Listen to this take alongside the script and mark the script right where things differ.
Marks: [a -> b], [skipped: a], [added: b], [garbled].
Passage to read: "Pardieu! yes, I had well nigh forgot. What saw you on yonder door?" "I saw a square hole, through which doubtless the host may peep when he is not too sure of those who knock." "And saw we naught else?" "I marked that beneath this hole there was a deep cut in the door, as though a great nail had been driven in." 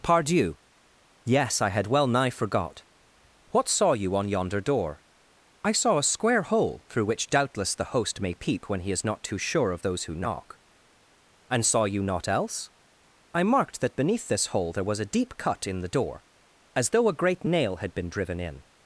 "Pardieu! yes, I had well nigh forgot. What saw you on yonder door?" "I saw a square hole, through which doubtless the host may peep when he is not too sure of those who knock." "And saw [we -> you] naught else?" "I marked that beneath this hole there was a deep cut in the door, as though a great nail had been driven in."